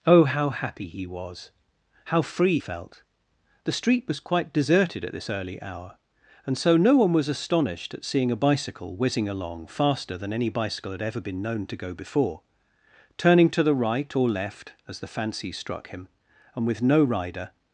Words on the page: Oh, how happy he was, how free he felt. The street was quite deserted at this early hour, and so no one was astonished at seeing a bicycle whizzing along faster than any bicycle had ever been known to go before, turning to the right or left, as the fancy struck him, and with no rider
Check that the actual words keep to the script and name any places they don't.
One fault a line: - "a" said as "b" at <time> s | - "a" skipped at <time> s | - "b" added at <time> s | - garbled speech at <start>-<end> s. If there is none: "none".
- "he" skipped at 2.6 s